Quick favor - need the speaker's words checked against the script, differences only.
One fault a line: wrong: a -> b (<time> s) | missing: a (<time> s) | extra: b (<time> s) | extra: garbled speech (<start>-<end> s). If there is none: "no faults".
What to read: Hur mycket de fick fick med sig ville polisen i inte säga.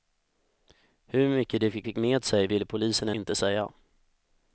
no faults